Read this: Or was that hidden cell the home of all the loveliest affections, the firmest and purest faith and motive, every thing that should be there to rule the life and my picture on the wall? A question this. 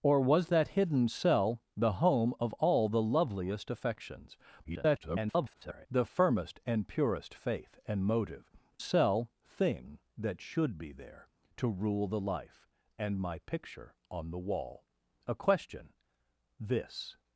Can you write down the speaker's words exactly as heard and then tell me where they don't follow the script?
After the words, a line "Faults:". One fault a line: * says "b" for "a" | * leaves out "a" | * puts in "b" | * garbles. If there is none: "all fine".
Or was that hidden cell the home of all the loveliest affections, [garbled] the firmest and purest faith and motive, cell thing that should be there to rule the life and my picture on the wall? A question this.
Faults:
* garbles
* says "cell" for "every"